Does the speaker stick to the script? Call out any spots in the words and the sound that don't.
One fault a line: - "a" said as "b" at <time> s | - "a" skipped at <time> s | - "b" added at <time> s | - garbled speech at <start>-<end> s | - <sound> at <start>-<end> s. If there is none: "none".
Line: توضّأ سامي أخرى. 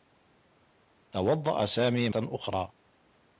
none